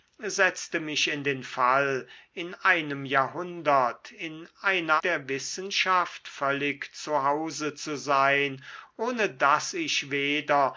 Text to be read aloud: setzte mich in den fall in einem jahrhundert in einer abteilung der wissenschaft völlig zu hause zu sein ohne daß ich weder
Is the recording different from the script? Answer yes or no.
yes